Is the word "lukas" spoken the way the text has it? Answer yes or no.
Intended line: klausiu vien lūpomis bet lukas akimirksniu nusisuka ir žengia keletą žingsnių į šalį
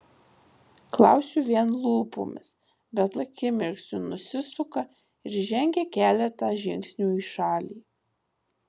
no